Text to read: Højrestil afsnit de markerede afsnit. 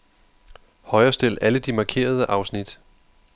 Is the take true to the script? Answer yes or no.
no